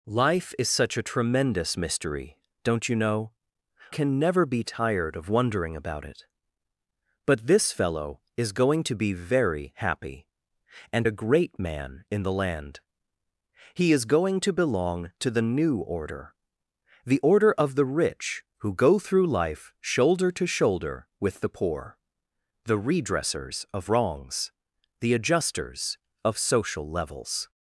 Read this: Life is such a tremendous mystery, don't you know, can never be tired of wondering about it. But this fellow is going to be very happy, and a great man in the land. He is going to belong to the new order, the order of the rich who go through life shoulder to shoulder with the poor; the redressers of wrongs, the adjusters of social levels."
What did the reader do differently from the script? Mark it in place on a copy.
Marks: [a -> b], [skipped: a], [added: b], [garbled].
Life is such a tremendous mystery, don't you know, can never be tired of wondering about it. But this fellow is going to be very happy, and a great man in the land. He is going to belong to the new order, the order of the rich who go through life shoulder to shoulder with the poor; the redressers of wrongs, the adjusters of social levels."